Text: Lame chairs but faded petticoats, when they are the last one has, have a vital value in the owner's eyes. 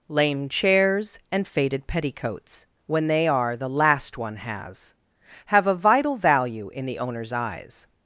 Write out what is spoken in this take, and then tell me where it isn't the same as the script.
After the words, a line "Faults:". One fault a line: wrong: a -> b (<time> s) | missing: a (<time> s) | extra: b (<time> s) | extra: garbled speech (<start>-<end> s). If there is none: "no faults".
Lame chairs and faded petticoats, when they are the last one has, have a vital value in the owner's eyes.
Faults:
wrong: but -> and (1.3 s)